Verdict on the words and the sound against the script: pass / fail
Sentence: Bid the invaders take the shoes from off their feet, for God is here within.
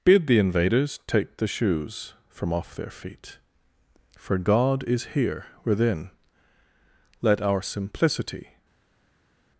fail